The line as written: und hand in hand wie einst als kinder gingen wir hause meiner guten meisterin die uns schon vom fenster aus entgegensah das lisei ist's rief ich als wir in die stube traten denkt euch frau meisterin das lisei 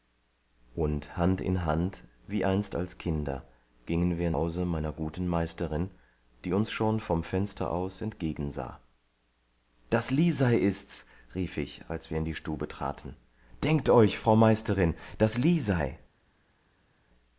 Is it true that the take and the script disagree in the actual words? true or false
false